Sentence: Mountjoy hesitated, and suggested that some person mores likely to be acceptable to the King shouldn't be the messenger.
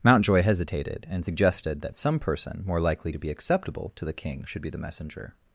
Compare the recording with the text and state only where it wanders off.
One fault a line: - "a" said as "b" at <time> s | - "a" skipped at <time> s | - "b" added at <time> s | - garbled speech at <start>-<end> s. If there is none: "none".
- "mores" said as "more" at 2.6 s
- "shouldn't" said as "should" at 4.5 s